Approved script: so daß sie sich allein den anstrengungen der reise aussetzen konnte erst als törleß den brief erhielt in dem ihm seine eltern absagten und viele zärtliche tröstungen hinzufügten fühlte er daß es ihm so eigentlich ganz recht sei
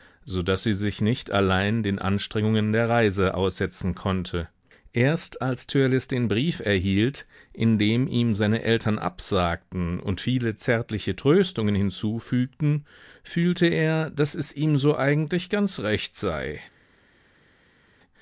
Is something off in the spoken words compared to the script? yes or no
yes